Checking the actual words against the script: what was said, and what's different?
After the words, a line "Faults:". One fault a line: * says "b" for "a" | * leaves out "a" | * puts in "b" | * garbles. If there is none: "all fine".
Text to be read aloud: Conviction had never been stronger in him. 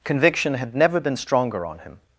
Conviction had never been stronger on him.
Faults:
* says "on" for "in"